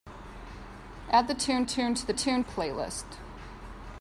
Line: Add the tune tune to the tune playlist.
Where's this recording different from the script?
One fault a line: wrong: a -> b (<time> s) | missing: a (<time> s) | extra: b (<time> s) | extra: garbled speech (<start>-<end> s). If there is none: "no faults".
no faults